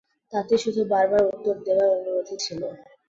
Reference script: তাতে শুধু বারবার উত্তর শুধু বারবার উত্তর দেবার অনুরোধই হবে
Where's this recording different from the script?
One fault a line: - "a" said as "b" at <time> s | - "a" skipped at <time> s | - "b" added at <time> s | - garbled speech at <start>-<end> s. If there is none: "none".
- "শুধু বারবার উত্তর" skipped at 1.6 s
- "হবে" said as "ছিল" at 2.4 s